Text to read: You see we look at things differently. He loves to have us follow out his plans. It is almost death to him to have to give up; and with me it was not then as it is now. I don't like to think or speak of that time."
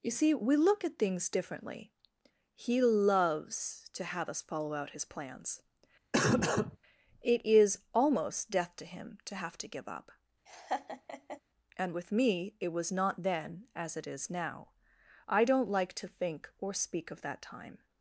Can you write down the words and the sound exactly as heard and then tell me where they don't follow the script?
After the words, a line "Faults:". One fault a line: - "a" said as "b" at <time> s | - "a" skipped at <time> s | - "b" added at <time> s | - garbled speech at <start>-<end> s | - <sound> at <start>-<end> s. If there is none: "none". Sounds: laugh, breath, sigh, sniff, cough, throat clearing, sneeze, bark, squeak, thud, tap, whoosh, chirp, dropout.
You see we look at things differently. He loves to have us follow out his plans. It is almost death to him to have to give up; and with me it was not then as it is now. I don't like to think or speak of that time."
Faults:
- cough at 6.1-6.8 s
- laugh at 10.5-11.4 s